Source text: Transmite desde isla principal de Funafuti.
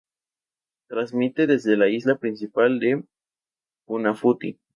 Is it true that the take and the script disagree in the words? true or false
true